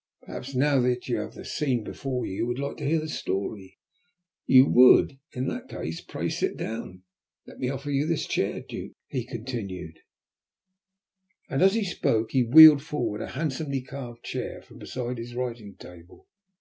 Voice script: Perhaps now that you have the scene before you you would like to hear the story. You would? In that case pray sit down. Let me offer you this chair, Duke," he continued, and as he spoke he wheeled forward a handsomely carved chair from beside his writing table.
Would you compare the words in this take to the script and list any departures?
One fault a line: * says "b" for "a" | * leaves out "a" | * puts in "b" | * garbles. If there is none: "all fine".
all fine